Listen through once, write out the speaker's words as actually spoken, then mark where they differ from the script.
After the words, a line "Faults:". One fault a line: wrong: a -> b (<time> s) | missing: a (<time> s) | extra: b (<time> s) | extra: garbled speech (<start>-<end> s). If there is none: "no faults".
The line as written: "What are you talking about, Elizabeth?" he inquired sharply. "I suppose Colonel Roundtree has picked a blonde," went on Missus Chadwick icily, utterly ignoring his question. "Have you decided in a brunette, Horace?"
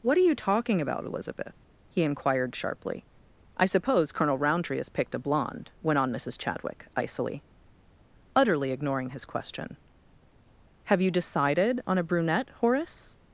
"What are you talking about, Elizabeth?" he inquired sharply. "I suppose Colonel Roundtree has picked a blonde," went on Missus Chadwick icily, utterly ignoring his question. "Have you decided on a brunette, Horace?"
Faults:
wrong: in -> on (11.9 s)